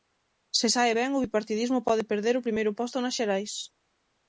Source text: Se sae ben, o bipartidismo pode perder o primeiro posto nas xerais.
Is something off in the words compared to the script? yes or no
no